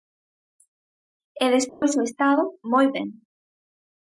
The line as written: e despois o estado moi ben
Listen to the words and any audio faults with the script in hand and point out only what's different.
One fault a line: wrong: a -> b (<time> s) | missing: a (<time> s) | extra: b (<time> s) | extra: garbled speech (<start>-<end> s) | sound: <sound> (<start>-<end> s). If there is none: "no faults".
sound: dropout (1.7-1.8 s)